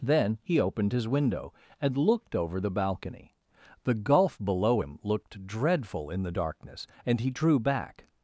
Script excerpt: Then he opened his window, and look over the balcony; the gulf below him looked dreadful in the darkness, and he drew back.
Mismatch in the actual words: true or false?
true